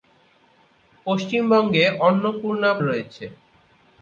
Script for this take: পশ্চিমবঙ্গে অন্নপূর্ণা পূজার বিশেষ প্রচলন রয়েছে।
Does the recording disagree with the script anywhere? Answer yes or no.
yes